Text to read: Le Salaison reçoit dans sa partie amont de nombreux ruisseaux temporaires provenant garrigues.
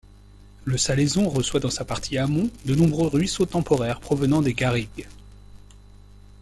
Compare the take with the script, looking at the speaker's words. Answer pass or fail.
fail